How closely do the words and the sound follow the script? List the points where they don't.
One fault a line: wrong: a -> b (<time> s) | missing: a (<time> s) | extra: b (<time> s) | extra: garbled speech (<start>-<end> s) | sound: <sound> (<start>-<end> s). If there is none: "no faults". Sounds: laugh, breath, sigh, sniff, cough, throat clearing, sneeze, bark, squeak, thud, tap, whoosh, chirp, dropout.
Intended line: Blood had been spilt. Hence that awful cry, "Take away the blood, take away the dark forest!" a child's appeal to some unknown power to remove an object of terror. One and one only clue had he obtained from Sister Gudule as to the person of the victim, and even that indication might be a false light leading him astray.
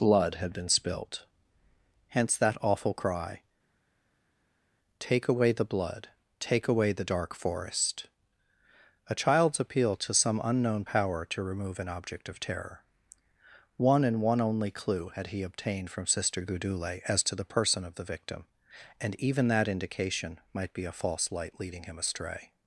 no faults